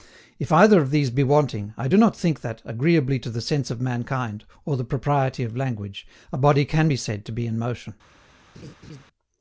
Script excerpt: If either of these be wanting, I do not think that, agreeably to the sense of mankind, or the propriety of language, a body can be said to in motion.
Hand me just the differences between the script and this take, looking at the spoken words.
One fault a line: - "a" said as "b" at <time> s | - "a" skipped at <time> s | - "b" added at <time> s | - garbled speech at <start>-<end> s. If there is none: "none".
- "be" added at 7.3 s